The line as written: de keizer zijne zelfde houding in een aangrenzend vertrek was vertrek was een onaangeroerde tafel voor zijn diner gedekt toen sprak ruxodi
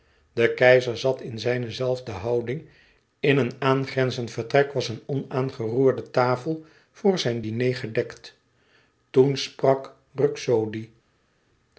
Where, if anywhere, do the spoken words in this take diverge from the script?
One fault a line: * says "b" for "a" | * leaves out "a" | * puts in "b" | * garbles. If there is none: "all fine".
* puts in "zat in"
* leaves out "vertrek was"